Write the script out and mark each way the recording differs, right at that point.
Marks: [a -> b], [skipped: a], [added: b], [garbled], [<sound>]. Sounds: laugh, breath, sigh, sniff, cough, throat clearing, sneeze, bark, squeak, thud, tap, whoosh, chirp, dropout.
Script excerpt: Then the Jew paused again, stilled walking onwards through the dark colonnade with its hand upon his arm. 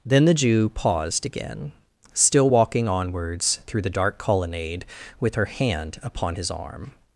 Then the Jew paused again, [stilled -> still] walking onwards through the dark colonnade with [its -> her] hand upon his arm.